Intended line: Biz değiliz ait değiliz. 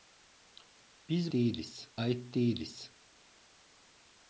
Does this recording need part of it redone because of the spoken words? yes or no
no